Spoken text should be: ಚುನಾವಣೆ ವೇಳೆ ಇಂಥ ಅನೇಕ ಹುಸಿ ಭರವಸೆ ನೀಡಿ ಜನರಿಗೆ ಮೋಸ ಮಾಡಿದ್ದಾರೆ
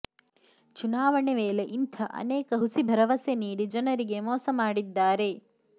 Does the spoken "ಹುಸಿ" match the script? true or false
true